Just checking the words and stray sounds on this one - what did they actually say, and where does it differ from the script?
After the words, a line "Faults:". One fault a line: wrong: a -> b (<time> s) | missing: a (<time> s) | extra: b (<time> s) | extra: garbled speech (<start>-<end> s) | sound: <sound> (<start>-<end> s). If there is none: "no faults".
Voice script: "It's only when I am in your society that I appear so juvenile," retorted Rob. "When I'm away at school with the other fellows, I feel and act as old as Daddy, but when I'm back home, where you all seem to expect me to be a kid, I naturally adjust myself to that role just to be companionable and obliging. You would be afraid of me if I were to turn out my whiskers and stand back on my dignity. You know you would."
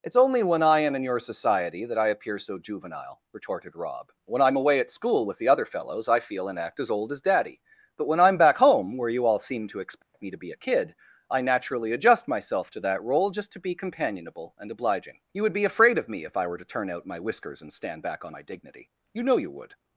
"It's only when I am in your society that I appear so juvenile," retorted Rob. "When I'm away at school with the other fellows, I feel and act as old as Daddy, but when I'm back home, where you all seem to expect me to be a kid, I naturally adjust myself to that role just to be companionable and obliging. You would be afraid of me if I were to turn out my whiskers and stand back on my dignity. You know you would."
Faults:
sound: dropout (10.0-10.1 s)